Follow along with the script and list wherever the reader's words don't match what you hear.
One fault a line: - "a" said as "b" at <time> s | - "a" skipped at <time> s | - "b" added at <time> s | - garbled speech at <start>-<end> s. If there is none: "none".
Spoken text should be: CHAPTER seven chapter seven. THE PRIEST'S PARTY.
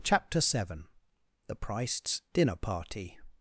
- "chapter seven" skipped at 0.9 s
- "DINNER" added at 2.3 s